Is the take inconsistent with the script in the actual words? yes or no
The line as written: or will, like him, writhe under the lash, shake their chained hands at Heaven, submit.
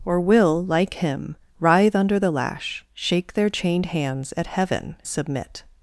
no